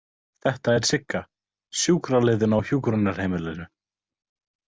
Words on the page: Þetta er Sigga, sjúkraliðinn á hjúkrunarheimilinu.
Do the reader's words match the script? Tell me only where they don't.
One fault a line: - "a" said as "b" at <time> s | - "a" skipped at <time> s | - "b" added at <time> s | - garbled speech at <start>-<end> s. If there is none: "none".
none